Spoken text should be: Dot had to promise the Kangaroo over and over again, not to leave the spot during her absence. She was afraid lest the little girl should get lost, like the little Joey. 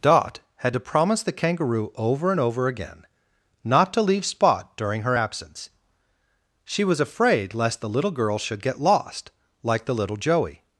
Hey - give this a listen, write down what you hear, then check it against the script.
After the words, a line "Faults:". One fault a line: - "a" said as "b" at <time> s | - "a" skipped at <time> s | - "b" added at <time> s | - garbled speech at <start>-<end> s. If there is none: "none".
Dot had to promise the Kangaroo over and over again, not to leave spot during her absence. She was afraid lest the little girl should get lost, like the little Joey.
Faults:
- "the" skipped at 4.2 s